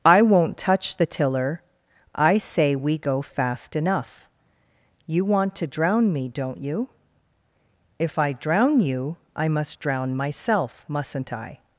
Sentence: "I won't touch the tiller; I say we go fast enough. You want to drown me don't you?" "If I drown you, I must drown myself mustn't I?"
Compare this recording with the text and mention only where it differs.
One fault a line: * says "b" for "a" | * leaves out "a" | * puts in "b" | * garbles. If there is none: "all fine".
all fine